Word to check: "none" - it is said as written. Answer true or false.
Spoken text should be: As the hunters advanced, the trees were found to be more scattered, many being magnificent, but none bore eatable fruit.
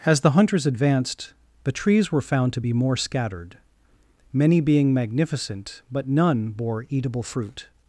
true